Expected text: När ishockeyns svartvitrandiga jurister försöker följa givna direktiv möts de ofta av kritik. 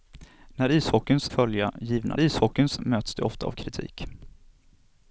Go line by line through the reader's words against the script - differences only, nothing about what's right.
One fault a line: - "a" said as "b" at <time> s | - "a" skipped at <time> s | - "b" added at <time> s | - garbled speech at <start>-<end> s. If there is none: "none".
- "svartvitrandiga jurister försöker" skipped at 1.3 s
- "direktiv" said as "ishockeyns" at 2.2 s